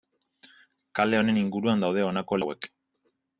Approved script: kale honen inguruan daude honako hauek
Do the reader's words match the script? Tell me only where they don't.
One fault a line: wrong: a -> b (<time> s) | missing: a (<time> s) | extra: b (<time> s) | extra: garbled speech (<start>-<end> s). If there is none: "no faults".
no faults